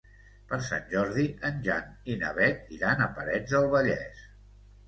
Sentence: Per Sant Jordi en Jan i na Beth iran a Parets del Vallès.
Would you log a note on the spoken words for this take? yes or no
no